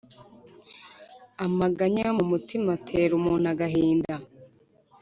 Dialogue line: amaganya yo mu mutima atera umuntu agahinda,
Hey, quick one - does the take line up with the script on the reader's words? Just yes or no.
yes